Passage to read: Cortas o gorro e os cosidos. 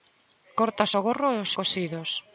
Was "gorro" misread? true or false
false